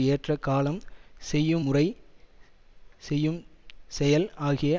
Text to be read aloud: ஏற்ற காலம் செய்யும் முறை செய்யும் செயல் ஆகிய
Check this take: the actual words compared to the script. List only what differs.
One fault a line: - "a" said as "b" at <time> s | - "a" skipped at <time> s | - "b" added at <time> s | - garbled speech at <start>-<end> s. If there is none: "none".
none